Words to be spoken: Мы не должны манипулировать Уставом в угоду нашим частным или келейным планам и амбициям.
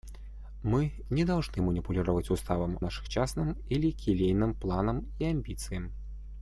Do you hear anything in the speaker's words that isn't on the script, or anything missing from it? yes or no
yes